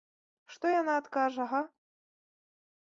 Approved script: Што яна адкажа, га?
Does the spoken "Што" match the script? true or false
true